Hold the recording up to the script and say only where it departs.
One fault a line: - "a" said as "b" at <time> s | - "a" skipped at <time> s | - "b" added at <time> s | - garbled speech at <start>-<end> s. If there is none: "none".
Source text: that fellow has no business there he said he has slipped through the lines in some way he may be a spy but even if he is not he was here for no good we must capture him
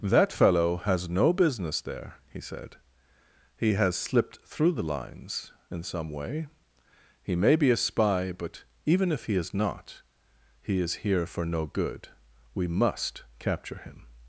- "was" said as "is" at 10.8 s